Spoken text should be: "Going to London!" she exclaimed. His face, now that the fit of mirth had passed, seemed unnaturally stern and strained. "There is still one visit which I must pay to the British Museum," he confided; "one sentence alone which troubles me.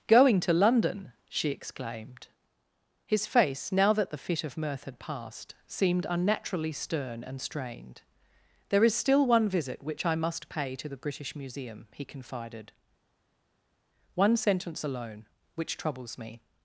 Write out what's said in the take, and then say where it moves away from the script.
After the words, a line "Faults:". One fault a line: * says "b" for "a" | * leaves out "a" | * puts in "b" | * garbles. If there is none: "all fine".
"Going to London!" she exclaimed. His face, now that the fit of mirth had passed, seemed unnaturally stern and strained. "There is still one visit which I must pay to the British Museum," he confided; "one sentence alone which troubles me.
Faults:
all fine